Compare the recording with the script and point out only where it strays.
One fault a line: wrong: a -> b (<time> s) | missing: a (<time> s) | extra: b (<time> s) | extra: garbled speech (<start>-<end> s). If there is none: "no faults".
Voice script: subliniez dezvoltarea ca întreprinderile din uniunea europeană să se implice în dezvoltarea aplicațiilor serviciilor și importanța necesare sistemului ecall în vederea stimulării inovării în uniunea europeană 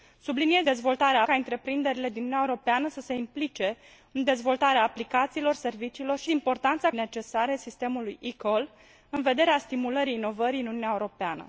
no faults